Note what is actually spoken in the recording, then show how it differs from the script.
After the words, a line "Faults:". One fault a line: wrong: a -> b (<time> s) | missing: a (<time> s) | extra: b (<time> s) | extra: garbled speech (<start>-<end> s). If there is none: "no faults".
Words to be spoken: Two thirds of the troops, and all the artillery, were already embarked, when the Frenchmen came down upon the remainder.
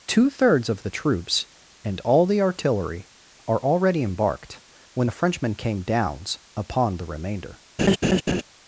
Two thirds of the troops, and all the artillery, are already embarked, when the Frenchmen came downs upon the remainder.
Faults:
wrong: were -> are (3.5 s)
wrong: down -> downs (5.8 s)